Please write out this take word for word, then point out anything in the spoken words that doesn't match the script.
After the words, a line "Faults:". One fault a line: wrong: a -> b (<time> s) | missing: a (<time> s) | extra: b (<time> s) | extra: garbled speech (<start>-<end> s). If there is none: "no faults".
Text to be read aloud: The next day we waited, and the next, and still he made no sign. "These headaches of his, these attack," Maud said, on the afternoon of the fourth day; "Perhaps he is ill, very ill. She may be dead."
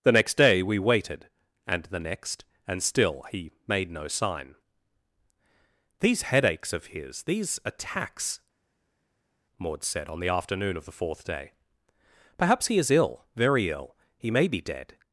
The next day we waited, and the next, and still he made no sign. "These headaches of his, these attacks," Maud said, on the afternoon of the fourth day; "Perhaps he is ill, very ill. He may be dead."
Faults:
wrong: attack -> attacks (7.7 s)
wrong: She -> He (14.2 s)